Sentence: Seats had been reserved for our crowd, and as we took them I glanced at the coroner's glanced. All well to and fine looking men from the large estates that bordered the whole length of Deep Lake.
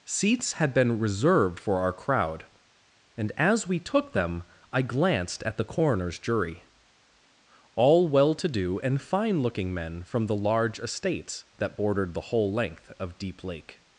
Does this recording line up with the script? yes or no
no